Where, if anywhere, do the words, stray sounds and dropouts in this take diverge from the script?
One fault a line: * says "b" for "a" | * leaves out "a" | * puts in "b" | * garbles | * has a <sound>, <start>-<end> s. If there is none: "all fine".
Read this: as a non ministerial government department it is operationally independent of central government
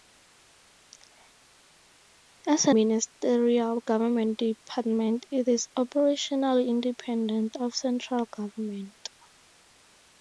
* leaves out "non"